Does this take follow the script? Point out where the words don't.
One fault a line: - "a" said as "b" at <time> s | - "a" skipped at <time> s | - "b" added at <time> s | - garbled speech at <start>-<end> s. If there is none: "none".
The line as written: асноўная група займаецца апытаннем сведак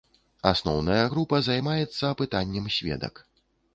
none